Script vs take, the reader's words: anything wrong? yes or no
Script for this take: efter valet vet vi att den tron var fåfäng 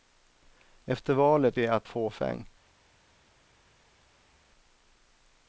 yes